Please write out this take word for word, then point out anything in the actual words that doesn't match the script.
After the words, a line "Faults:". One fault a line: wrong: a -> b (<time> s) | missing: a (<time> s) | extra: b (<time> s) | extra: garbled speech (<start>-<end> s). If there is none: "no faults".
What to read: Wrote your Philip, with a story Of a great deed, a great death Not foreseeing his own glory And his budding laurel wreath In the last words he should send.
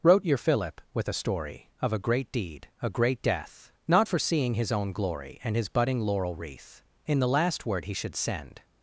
Wrote your Philip, with a story Of a great deed, a great death Not foreseeing his own glory And his budding laurel wreath In the last word he should send.
Faults:
wrong: words -> word (7.7 s)